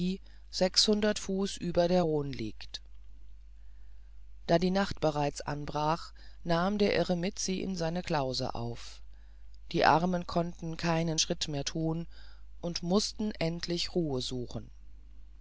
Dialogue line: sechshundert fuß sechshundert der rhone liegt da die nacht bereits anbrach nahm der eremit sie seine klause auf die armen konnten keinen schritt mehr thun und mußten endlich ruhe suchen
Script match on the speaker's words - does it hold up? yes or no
no